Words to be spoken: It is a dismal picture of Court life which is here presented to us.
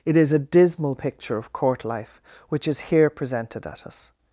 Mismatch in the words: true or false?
true